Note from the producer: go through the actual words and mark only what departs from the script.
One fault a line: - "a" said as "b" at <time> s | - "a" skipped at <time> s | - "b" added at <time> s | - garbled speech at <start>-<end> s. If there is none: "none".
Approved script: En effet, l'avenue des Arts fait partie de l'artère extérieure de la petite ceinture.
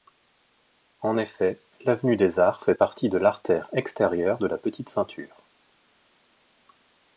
none